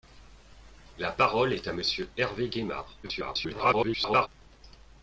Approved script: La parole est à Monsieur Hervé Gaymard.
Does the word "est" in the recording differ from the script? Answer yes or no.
no